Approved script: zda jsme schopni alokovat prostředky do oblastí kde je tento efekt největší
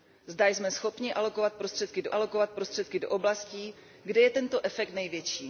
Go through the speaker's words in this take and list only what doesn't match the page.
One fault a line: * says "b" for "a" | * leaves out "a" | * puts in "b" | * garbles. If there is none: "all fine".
* puts in "alokovat prostředky do"